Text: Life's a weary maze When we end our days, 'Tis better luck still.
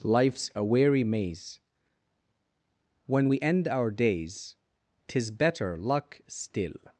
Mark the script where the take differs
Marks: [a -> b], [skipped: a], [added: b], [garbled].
Life's a weary maze When we end our days, 'Tis better luck still.